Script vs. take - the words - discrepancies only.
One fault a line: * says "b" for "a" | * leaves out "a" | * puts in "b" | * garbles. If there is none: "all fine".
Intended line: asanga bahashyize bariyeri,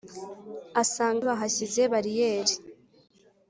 all fine